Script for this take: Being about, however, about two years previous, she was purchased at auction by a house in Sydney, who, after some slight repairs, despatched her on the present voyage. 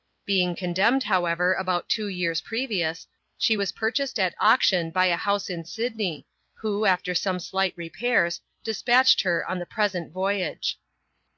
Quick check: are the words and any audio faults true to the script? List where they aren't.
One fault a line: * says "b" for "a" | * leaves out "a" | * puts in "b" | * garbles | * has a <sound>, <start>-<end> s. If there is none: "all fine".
* says "condemned" for "about"